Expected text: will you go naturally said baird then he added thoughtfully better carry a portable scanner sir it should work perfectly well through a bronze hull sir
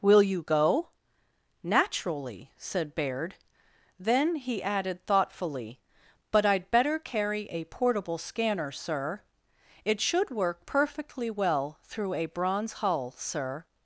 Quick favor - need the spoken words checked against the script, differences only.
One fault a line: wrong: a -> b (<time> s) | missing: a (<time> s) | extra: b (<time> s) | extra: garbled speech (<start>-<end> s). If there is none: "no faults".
extra: but i'd (6.3 s)